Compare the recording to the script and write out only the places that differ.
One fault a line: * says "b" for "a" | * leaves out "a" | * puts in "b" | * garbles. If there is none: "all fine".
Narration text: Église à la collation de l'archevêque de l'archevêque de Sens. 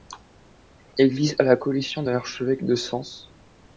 * leaves out "l'archevêque de"